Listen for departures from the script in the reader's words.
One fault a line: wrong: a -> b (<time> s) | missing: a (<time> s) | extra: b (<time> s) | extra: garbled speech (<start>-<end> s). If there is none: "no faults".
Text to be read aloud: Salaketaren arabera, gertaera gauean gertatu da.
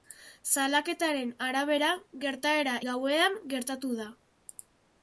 no faults